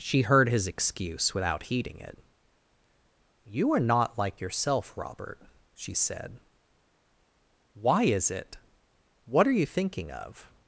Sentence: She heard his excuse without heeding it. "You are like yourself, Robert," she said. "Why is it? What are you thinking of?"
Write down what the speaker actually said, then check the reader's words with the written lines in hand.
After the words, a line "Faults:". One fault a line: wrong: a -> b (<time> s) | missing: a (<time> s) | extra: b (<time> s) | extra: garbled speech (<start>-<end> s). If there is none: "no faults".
She heard his excuse without heeding it. "You are not like yourself, Robert," she said. "Why is it? What are you thinking of?"
Faults:
extra: not (3.8 s)